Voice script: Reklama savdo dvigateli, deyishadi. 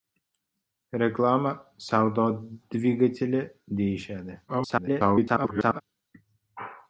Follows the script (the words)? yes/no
no